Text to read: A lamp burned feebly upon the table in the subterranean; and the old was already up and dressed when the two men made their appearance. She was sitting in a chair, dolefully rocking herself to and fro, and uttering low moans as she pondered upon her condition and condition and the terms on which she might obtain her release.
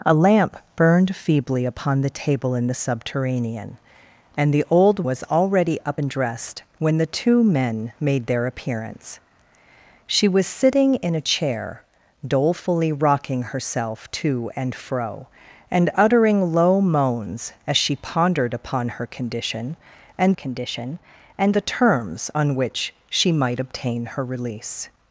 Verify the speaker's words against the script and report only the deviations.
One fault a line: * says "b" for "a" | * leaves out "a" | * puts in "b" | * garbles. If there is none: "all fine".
all fine